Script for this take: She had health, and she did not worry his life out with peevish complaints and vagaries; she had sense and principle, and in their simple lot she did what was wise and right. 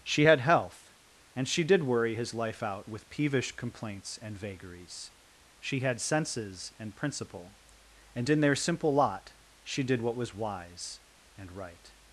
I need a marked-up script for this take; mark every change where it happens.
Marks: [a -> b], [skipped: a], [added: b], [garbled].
She had health, and she did [skipped: not] worry his life out with peevish complaints and vagaries; she had [sense -> senses] and principle, and in their simple lot she did what was wise and right.